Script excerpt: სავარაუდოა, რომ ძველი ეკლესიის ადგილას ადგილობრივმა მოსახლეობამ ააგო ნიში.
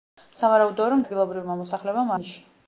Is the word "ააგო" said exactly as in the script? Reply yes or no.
no